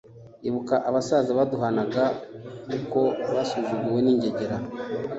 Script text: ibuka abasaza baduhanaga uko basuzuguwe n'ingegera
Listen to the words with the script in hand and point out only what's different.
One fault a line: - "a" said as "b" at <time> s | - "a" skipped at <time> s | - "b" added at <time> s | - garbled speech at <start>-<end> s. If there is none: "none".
none